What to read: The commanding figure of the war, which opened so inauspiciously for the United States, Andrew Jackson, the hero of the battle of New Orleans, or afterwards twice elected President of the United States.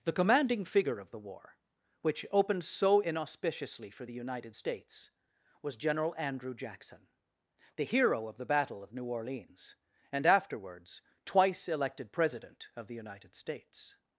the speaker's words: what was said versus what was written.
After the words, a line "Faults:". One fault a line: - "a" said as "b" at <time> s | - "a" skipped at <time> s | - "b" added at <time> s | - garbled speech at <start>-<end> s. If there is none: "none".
The commanding figure of the war, which opened so inauspiciously for the United States, was General Andrew Jackson, the hero of the battle of New Orleans, and afterwards twice elected President of the United States.
Faults:
- "was General" added at 5.6 s
- "or" said as "and" at 10.1 s